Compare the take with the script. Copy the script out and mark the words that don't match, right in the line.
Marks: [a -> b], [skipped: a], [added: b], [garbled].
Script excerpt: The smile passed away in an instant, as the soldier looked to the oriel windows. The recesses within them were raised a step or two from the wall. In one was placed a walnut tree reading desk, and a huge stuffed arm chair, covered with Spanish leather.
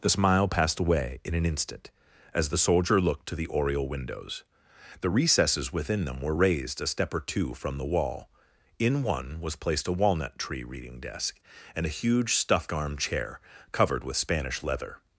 The smile passed away in an instant, as the soldier looked to the oriel windows. The recesses within them were raised a step or two from the wall. In one was placed a walnut tree reading desk, and a huge stuffed arm chair, covered with Spanish leather.